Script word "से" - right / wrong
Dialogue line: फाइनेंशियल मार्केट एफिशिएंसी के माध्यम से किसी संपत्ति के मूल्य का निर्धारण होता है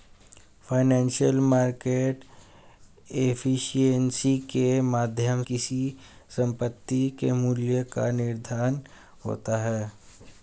wrong